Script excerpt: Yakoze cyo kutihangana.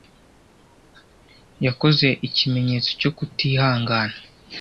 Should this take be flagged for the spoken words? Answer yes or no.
yes